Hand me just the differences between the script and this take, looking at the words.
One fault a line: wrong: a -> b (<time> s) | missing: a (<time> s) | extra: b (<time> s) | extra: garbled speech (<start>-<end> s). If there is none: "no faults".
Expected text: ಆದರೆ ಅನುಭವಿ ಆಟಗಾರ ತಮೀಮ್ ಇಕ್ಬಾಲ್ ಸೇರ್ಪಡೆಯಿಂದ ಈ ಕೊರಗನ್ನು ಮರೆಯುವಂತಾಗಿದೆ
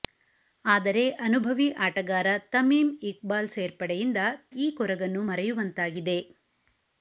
no faults